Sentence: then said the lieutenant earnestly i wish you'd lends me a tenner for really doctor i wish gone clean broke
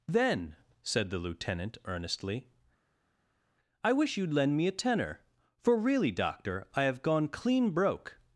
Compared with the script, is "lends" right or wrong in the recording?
wrong